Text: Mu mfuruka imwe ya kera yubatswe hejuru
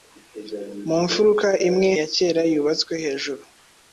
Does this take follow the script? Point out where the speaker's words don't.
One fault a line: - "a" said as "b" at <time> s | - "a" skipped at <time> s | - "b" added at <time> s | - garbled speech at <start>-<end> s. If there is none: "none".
none